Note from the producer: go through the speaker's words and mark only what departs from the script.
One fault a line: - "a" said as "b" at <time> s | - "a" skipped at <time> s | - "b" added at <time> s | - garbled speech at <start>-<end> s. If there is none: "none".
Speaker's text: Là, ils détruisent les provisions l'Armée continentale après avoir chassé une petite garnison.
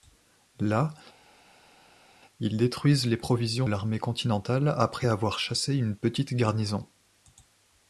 none